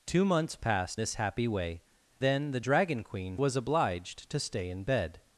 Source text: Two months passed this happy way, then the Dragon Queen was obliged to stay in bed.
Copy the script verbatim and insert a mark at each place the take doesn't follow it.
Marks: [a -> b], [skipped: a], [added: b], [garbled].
Two months passed this happy way, then the Dragon Queen was obliged to stay in bed.